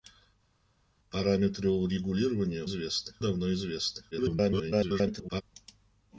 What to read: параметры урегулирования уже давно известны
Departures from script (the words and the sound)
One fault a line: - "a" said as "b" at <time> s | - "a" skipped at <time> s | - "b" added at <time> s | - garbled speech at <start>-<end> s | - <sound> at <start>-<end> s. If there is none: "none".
- "уже" said as "известны" at 2.6 s
- garbled speech at 4.1-5.4 s